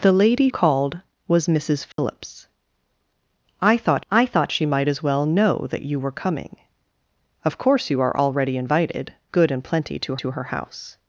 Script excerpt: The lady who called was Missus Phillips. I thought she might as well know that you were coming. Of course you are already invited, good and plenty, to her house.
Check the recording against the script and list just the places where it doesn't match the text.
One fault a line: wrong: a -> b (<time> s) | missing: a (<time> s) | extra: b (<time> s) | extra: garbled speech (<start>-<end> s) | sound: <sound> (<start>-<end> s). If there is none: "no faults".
missing: who (0.5 s)
sound: dropout (1.9-2.0 s)
extra: I thought (4.1 s)
extra: to (10.1 s)